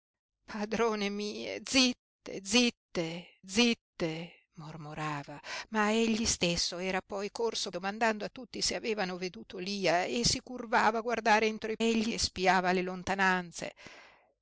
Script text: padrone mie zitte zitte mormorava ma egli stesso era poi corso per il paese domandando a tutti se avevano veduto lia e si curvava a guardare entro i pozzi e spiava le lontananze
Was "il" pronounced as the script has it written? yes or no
no